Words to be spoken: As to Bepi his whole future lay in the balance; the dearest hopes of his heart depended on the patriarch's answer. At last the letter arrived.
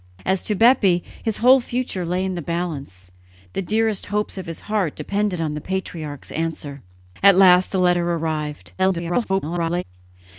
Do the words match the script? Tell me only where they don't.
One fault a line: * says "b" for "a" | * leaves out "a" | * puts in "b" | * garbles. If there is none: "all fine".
* garbles